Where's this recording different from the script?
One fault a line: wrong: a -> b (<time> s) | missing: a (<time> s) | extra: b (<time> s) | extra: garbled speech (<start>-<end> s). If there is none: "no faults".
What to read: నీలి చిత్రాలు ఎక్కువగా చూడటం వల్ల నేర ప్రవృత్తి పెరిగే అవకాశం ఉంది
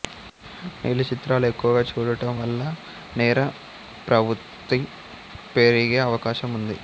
no faults